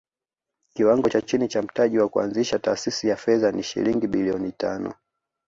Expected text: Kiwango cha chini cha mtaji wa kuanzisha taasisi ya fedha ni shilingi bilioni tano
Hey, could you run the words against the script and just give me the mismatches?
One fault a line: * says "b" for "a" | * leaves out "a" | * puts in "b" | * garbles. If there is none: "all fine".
all fine